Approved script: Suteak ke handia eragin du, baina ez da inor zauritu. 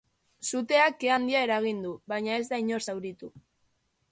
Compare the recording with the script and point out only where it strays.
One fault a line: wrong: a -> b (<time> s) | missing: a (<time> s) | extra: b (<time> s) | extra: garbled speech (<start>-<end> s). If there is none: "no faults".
no faults